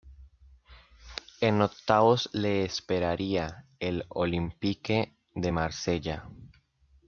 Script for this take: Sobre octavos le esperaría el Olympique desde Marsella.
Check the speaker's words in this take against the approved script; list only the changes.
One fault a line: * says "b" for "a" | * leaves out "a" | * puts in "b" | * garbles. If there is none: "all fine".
* says "En" for "Sobre"
* says "de" for "desde"